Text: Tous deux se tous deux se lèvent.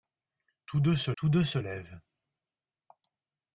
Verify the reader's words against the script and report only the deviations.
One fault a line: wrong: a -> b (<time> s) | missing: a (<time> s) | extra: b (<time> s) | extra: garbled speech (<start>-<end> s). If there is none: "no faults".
no faults